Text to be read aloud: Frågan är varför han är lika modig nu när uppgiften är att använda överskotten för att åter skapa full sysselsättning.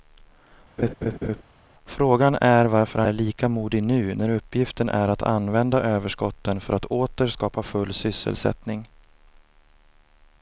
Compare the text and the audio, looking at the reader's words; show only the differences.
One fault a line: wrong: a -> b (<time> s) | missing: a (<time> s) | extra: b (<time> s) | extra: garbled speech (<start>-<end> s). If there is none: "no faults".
no faults